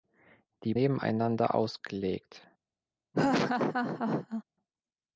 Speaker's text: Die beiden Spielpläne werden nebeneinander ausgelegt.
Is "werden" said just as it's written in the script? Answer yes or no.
no